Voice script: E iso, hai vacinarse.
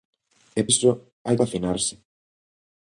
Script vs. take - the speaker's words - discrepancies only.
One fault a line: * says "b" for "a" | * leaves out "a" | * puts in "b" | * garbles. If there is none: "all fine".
all fine